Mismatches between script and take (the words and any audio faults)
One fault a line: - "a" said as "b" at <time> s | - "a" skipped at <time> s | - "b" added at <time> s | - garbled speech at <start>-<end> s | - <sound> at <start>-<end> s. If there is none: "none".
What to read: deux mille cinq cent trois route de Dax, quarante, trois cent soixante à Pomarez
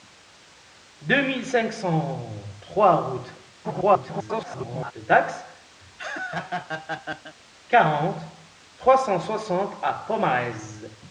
- garbled speech at 3.6-4.9 s
- laugh at 5.8-7.3 s